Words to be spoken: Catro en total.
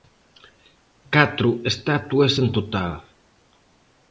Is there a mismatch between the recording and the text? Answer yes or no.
yes